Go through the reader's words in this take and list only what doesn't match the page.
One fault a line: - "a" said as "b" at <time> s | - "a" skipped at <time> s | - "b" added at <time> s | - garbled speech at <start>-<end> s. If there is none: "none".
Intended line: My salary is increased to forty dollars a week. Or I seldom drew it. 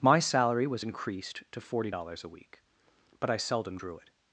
- "is" said as "was" at 0.7 s
- "Or" said as "But" at 3.2 s